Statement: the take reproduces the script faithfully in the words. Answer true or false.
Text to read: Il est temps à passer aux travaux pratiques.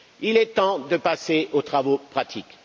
false